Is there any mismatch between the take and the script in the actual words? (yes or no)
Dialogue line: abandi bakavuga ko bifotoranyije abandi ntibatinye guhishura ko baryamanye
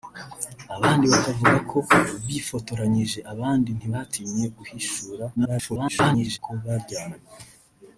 yes